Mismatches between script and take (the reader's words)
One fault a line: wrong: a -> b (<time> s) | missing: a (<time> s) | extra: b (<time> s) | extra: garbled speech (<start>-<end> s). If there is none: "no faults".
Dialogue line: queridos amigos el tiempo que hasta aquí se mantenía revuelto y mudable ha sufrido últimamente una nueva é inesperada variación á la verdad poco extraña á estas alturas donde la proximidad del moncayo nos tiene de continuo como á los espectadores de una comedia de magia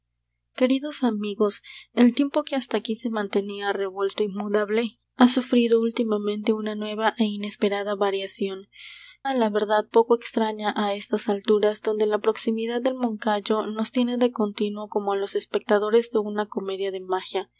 no faults